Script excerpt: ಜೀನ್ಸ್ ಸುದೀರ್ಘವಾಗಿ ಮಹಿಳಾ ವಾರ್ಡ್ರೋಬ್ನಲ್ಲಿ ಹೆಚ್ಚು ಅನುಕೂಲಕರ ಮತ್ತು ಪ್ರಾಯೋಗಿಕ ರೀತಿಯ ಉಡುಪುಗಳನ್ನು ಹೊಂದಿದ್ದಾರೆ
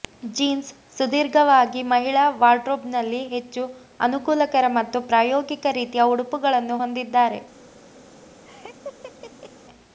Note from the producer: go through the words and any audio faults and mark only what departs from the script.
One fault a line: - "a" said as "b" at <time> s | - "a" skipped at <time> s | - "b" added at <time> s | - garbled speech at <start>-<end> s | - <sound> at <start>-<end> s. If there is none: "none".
- laugh at 8.4-9.5 s